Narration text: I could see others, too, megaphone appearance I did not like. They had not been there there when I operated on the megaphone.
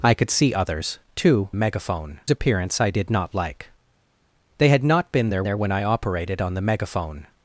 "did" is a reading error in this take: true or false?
false